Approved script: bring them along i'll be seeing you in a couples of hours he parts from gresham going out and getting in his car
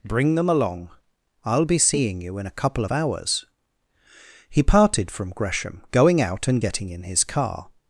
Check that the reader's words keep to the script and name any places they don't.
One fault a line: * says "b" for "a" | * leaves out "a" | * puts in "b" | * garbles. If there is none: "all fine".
* says "couple" for "couples"
* says "parted" for "parts"